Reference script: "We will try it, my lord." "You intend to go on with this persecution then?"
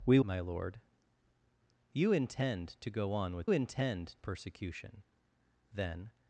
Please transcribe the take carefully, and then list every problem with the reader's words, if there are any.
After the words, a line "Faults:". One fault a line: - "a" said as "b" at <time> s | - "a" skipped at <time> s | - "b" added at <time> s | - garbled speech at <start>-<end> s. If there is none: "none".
"We my lord." "You intend to go on with intend persecution then?"
Faults:
- "will try it" skipped at 0.2 s
- "this" said as "intend" at 3.5 s